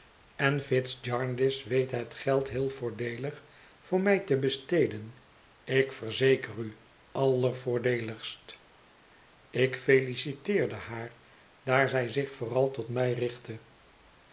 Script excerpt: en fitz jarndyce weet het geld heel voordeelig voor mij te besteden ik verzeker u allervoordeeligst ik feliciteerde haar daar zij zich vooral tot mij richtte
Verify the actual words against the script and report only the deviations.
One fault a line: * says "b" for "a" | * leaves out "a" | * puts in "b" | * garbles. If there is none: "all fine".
all fine